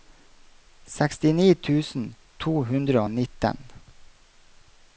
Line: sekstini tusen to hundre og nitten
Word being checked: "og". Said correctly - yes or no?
yes